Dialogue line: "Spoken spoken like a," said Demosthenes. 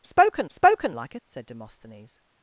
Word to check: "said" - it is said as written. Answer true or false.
true